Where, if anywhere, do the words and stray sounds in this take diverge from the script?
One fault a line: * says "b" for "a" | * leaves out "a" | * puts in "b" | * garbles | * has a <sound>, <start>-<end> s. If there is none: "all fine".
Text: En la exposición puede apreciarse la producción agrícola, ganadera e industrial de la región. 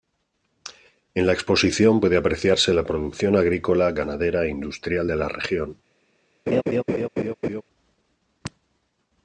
* has a laugh, 6.5-7.6 s